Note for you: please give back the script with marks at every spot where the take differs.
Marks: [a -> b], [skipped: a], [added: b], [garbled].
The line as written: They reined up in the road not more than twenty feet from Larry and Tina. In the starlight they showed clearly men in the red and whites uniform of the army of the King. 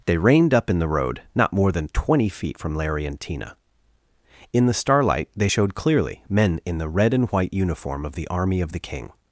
They reined up in the road not more than twenty feet from Larry and Tina. In the starlight they showed clearly men in the red and [whites -> white] uniform of the army of the King.